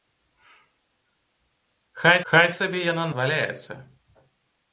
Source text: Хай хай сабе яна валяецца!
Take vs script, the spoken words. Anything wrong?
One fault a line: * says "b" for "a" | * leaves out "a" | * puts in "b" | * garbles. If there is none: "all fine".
all fine